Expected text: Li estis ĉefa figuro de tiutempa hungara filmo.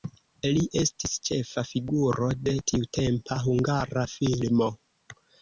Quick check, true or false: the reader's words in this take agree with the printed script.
true